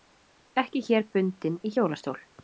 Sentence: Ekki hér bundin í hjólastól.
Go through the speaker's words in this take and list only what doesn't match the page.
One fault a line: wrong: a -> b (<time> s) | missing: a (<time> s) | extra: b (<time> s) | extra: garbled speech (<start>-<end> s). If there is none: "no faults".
no faults